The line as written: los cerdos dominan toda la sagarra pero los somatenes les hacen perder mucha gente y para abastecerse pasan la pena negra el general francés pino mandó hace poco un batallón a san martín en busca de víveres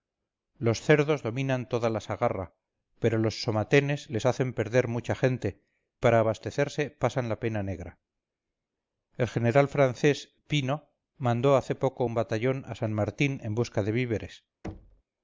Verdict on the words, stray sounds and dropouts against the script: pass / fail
fail